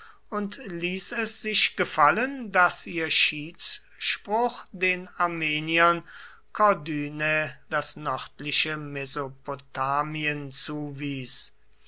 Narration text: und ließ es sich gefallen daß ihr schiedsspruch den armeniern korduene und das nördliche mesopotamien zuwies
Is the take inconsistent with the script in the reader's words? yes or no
yes